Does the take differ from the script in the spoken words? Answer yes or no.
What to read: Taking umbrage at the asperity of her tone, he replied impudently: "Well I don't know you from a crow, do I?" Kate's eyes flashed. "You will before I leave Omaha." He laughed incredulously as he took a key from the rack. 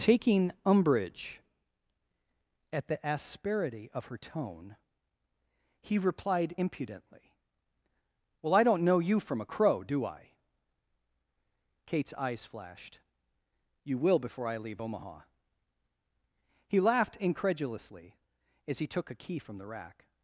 no